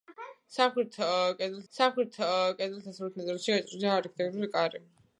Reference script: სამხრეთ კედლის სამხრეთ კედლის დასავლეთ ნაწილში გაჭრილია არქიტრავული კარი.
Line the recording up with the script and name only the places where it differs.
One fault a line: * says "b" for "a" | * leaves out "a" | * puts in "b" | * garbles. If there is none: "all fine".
all fine